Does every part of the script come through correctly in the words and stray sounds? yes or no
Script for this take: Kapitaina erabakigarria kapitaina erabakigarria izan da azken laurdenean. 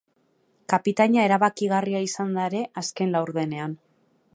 no